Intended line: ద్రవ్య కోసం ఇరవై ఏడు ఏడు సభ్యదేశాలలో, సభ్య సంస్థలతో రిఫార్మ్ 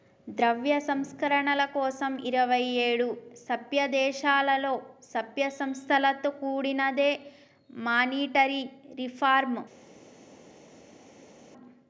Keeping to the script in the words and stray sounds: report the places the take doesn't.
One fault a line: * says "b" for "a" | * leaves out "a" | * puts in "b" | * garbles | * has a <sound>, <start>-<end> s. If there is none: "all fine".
* puts in "సంస్కరణల"
* leaves out "ఏడు"
* puts in "కూడినదే మానిటరీ"